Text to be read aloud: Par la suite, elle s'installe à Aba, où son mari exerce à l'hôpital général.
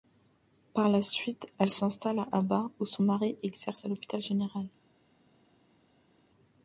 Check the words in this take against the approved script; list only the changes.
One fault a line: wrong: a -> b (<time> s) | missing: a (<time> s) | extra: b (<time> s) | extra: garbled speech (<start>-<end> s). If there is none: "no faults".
no faults